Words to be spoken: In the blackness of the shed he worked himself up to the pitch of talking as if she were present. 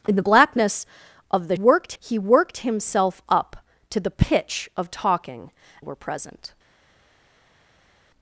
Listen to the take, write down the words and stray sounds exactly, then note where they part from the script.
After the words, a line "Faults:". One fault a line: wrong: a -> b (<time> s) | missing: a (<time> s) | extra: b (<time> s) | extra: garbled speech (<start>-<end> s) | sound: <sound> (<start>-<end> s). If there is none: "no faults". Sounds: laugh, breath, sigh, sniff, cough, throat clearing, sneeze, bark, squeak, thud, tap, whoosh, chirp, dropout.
In the blackness of the worked he worked himself up to the pitch of talking were present.
Faults:
wrong: shed -> worked (1.5 s)
missing: as if she (5.5 s)